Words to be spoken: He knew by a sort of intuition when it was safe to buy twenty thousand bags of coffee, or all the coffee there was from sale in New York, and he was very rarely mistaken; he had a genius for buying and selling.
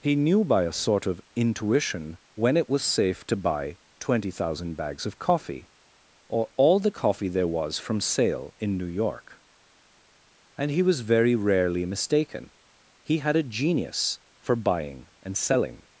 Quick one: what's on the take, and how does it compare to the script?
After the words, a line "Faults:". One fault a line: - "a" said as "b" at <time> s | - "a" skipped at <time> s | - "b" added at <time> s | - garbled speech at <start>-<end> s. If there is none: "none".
He knew by a sort of intuition when it was safe to buy twenty thousand bags of coffee, or all the coffee there was from sale in New York, and he was very rarely mistaken; he had a genius for buying and selling.
Faults:
none